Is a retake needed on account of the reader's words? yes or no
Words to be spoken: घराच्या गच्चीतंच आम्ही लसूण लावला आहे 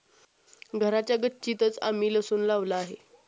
no